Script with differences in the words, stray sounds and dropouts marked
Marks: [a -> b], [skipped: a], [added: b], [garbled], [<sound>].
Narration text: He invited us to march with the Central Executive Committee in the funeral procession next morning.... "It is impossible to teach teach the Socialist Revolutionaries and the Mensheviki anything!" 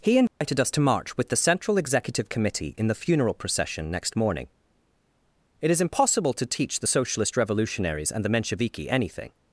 He invited [dropout] us to march with the Central Executive Committee in the funeral procession next morning.... "It is impossible to teach [skipped: teach] the Socialist Revolutionaries and the Mensheviki anything!"